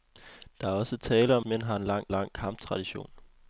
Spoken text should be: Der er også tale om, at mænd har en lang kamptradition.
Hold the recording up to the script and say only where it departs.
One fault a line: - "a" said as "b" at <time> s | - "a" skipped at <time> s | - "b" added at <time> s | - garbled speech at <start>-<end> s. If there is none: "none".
- "at" skipped at 1.4 s
- "lang" added at 2.1 s